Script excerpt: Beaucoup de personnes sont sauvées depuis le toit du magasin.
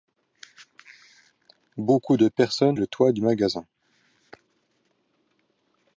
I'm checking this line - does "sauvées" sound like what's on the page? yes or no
no